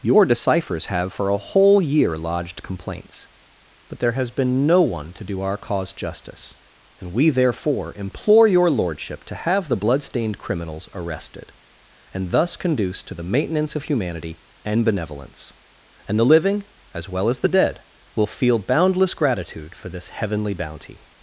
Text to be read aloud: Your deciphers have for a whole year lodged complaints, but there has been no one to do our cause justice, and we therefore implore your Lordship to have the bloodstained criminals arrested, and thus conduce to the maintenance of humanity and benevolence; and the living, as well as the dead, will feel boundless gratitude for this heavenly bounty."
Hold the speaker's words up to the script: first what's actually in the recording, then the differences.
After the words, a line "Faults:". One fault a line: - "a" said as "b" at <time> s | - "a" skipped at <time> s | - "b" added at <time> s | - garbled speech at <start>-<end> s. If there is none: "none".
Your deciphers have for a whole year lodged complaints, but there has been no one to do our cause justice, and we therefore implore your Lordship to have the bloodstained criminals arrested, and thus conduce to the maintenance of humanity and benevolence; and the living, as well as the dead, will feel boundless gratitude for this heavenly bounty."
Faults:
none